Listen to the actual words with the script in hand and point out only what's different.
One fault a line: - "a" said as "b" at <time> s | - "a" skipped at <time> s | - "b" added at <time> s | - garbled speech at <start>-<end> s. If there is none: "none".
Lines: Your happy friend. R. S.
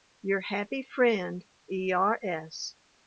- "E" added at 1.7 s